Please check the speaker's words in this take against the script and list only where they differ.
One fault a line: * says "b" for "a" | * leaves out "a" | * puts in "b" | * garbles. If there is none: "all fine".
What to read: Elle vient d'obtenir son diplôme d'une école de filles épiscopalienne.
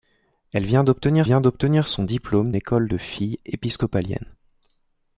* puts in "vient d'obtenir"
* leaves out "d'une"